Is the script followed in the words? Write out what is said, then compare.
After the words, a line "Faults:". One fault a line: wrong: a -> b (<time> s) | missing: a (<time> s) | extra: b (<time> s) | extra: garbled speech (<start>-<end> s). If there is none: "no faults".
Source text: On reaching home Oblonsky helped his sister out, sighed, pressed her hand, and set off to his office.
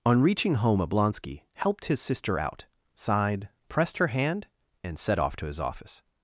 On reaching home Oblonsky helped his sister out, sighed, pressed her hand, and set off to his office.
Faults:
no faults